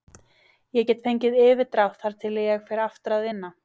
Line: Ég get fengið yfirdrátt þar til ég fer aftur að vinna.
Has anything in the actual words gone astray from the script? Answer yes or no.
no